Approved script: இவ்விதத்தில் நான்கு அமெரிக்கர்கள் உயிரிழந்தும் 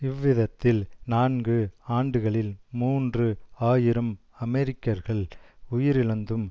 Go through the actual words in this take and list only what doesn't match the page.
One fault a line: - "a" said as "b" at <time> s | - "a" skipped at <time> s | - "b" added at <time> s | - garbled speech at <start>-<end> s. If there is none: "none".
- "ஆண்டுகளில் மூன்று ஆயிரம்" added at 2.0 s